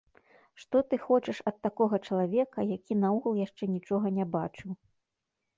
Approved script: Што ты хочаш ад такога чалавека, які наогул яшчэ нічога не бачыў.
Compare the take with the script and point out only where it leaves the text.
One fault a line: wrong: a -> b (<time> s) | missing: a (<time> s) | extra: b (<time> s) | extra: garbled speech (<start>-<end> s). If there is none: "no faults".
no faults